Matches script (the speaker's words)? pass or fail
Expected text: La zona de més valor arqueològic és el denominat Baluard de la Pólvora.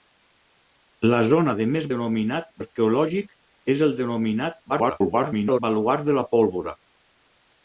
fail